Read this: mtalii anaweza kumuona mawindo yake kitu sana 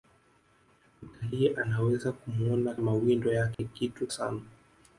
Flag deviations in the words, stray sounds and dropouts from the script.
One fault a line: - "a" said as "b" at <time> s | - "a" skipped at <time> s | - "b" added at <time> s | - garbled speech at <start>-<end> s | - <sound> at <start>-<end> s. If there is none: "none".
- dropout at 3.5-3.6 s